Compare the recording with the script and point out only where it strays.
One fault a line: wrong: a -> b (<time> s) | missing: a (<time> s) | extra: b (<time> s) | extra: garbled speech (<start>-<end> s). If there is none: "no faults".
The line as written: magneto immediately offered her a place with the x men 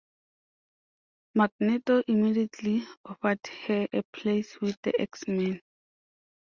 no faults